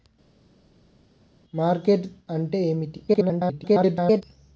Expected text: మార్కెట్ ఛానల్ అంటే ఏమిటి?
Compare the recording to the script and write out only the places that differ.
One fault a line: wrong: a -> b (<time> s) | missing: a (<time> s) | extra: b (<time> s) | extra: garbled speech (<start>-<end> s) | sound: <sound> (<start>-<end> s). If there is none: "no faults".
missing: ఛానల్ (2.1 s)
extra: garbled speech (3.1-4.2 s)